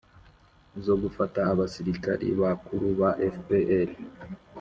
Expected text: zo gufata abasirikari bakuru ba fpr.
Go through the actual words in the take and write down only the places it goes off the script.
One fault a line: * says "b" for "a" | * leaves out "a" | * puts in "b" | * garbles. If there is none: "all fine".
all fine